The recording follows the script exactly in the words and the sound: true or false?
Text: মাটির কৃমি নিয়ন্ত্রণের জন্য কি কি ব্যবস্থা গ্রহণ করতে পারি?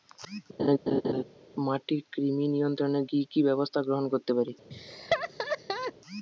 false